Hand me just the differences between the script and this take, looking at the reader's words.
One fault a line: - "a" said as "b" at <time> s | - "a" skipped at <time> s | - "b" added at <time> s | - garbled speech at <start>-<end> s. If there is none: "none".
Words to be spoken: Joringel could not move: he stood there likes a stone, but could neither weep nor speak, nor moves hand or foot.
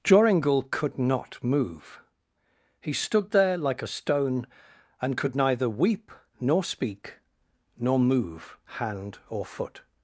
- "likes" said as "like" at 3.6 s
- "but" said as "and" at 5.0 s
- "moves" said as "move" at 8.0 s